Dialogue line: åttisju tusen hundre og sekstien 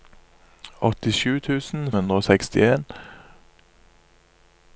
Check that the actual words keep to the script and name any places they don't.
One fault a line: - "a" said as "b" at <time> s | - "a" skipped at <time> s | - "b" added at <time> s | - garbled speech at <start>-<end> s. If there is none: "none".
none